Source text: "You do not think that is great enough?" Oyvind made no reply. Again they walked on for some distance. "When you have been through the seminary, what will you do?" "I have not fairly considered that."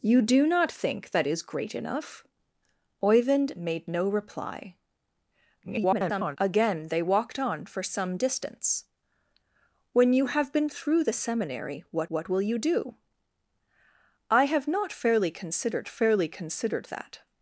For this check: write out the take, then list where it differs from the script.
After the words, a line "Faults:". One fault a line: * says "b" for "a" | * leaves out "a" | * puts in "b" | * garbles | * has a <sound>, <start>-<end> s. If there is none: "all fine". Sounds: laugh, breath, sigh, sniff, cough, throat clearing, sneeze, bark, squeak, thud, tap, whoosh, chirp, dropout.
"You do not think that is great enough?" Oyvind made no reply. [garbled] Again they walked on for some distance. "When you have been through the seminary, what what will you do?" "I have not fairly considered fairly considered that."
Faults:
* garbles
* puts in "what"
* puts in "fairly considered"